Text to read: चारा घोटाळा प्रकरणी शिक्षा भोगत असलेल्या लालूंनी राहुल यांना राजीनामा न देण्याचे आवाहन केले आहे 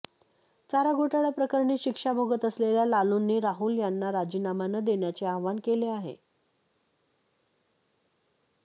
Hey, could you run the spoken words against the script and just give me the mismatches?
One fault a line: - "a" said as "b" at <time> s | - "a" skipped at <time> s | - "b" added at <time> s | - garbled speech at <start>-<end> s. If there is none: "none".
none